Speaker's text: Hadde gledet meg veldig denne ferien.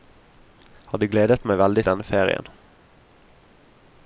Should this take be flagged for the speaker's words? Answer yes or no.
no